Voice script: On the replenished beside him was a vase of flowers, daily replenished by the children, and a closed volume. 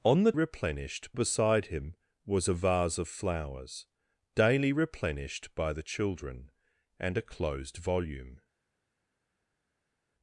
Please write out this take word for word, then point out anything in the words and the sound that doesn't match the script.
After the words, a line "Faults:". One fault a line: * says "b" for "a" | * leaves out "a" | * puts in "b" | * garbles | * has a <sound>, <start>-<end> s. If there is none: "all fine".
On the replenished beside him was a vase of flowers, daily replenished by the children, and a closed volume.
Faults:
all fine